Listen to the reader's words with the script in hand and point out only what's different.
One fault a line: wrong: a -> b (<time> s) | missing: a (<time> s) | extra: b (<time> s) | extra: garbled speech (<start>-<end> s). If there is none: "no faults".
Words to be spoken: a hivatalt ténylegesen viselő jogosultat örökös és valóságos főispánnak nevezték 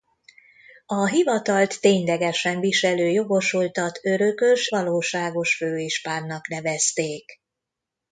missing: és (4.7 s)